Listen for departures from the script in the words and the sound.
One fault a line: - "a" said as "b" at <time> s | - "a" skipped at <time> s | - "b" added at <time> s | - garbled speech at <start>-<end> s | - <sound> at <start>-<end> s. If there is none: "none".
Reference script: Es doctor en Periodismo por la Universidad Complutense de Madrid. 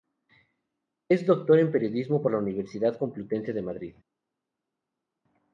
none